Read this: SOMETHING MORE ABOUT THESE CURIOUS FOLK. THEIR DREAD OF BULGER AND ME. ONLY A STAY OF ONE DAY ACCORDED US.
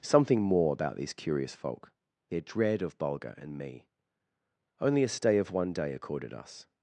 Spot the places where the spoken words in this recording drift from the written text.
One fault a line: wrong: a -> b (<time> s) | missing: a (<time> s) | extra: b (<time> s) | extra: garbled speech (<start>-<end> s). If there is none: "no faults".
no faults